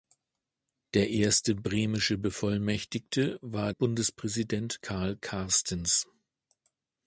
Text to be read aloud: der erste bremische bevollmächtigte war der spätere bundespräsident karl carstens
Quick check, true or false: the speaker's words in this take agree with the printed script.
false